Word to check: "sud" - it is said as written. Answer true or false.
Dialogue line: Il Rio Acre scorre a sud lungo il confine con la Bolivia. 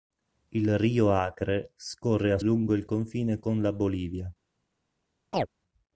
false